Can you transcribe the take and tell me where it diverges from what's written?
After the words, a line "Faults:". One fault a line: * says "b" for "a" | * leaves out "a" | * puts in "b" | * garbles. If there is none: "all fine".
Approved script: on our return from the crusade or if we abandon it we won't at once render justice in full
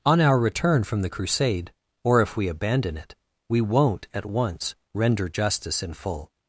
on our return from the crusade or if we abandon it we won't at once render justice in full
Faults:
all fine